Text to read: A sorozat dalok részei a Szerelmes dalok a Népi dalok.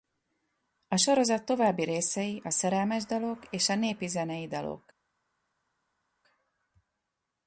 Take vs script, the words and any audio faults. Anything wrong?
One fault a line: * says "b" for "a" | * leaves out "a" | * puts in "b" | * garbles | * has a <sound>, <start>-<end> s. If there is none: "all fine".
* says "további" for "dalok"
* puts in "és"
* puts in "zenei"